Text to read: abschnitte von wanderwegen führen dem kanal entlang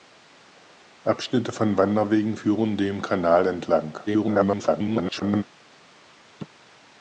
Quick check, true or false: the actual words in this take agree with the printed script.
false